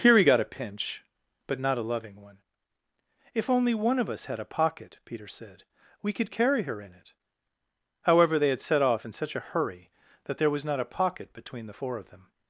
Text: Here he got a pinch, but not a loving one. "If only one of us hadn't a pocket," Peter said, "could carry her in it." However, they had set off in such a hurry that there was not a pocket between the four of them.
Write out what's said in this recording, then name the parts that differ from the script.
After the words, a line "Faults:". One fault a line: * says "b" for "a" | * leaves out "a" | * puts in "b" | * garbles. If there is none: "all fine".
Here he got a pinch, but not a loving one. "If only one of us had a pocket," Peter said, "we could carry her in it." However, they had set off in such a hurry that there was not a pocket between the four of them.
Faults:
* says "had" for "hadn't"
* puts in "we"